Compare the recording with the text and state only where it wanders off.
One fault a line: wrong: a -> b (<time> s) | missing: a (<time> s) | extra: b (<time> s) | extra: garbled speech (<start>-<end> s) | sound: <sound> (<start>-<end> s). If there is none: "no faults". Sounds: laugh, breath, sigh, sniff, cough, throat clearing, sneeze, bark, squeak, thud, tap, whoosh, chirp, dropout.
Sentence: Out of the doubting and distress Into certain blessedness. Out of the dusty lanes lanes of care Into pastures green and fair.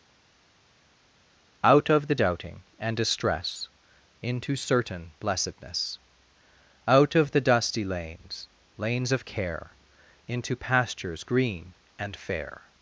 no faults